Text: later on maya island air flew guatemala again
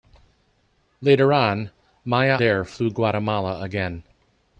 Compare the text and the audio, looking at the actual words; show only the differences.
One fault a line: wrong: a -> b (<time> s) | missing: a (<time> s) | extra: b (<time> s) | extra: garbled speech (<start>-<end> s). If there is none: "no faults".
missing: island (2.4 s)